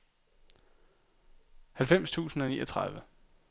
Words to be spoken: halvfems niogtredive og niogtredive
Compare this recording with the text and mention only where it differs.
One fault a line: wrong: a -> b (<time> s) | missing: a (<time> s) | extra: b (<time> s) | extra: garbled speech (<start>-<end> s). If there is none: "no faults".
wrong: niogtredive -> tusind (2.1 s)